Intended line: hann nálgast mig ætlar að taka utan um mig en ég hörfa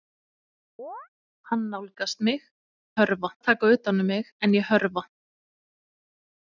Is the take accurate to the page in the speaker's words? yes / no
no